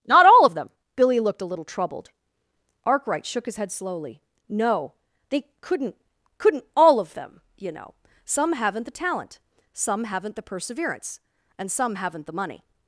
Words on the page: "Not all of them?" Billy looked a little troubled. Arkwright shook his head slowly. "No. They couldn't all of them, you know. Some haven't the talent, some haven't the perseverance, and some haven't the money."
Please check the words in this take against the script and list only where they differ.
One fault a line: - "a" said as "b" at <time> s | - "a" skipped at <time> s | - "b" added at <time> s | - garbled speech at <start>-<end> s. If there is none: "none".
- "couldn't" added at 6.4 s